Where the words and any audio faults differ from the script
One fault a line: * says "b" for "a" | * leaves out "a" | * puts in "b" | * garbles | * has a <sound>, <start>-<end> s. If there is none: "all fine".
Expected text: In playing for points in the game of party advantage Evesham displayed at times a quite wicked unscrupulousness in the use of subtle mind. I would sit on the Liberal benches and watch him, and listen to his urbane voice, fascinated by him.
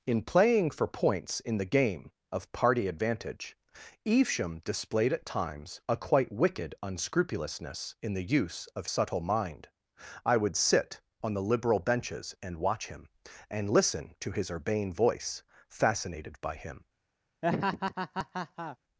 * has a laugh, 17.4-18.8 s